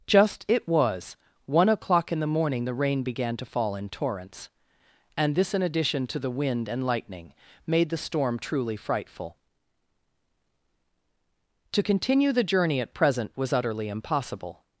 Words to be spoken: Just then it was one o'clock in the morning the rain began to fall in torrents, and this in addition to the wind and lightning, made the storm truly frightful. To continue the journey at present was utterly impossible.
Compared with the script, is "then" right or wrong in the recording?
wrong